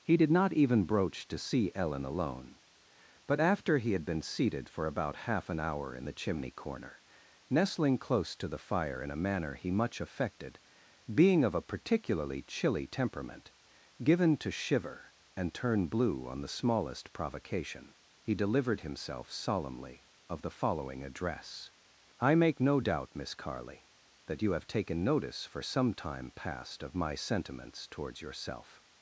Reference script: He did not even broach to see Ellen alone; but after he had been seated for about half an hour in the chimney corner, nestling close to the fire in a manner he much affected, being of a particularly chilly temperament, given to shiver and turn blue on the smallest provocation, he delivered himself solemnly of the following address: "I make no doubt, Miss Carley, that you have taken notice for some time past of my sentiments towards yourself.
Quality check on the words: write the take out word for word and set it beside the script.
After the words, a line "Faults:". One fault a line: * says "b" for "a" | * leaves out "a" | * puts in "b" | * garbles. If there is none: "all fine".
He did not even broach to see Ellen alone; but after he had been seated for about half an hour in the chimney corner, nestling close to the fire in a manner he much affected, being of a particularly chilly temperament, given to shiver and turn blue on the smallest provocation, he delivered himself solemnly of the following address: "I make no doubt, Miss Carley, that you have taken notice for some time past of my sentiments towards yourself.
Faults:
all fine